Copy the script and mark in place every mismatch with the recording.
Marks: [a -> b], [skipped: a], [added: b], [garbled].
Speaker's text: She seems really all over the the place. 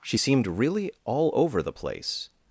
She [seems -> seemed] really all over the [skipped: the] place.